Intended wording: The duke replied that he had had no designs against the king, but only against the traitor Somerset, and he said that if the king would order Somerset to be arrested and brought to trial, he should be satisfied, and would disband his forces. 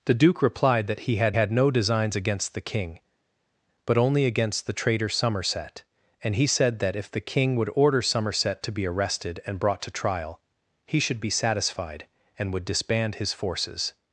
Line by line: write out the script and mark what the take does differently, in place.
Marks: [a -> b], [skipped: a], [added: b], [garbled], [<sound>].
The duke replied that he had had no designs against the king, but only against the traitor Somerset, and he said that if the king would order Somerset to be arrested and brought to trial, he should be satisfied, and would disband his forces.